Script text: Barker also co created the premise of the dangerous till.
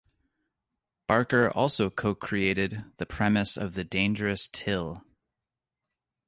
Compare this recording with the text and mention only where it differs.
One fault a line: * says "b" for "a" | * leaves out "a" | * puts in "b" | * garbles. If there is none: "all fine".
all fine